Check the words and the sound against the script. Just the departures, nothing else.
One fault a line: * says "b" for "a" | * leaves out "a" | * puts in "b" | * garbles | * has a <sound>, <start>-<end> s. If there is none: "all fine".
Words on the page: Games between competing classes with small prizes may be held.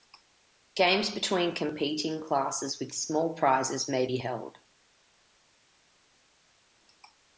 all fine